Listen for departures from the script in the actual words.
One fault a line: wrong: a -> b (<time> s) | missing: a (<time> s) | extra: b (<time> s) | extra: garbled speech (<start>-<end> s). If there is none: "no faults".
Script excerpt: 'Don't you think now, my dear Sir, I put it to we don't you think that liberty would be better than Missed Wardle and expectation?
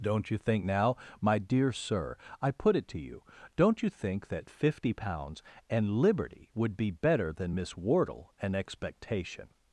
wrong: we -> you (3.0 s)
extra: fifty pounds and (4.5 s)
wrong: Missed -> Miss (7.5 s)